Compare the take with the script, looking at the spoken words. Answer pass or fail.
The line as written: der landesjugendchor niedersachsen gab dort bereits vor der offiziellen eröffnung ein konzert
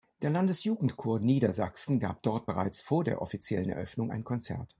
pass